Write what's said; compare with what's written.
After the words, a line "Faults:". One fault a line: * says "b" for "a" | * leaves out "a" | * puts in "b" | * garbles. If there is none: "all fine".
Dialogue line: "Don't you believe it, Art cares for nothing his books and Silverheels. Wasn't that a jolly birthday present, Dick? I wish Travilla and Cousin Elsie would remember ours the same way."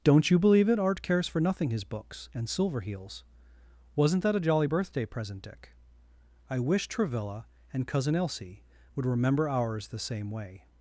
"Don't you believe it, Art cares for nothing his books and Silverheels. Wasn't that a jolly birthday present, Dick? I wish Travilla and Cousin Elsie would remember ours the same way."
Faults:
all fine